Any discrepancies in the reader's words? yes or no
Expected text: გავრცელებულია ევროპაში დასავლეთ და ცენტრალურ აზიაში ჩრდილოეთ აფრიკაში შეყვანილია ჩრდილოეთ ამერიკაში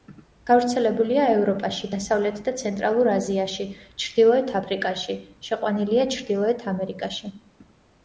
no